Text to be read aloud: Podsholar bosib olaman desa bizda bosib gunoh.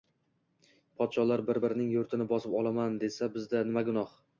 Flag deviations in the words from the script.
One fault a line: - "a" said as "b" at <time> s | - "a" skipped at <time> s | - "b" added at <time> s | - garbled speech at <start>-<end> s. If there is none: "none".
- "bir birining yurtini" added at 1.5 s
- "bosib" said as "nima" at 3.7 s